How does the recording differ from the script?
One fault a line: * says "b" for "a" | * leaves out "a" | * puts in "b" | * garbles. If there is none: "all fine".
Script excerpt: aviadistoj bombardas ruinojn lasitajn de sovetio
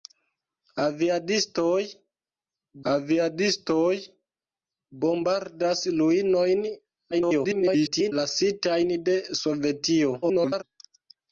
* puts in "aviadistoj"
* garbles
* garbles